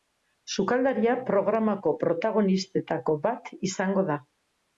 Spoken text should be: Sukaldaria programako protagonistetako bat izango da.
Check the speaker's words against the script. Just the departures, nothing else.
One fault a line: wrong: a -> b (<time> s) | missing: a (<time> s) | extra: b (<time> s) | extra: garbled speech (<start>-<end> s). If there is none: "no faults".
no faults